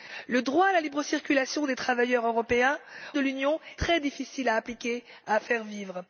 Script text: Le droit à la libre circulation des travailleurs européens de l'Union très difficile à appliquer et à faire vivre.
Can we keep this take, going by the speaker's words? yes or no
yes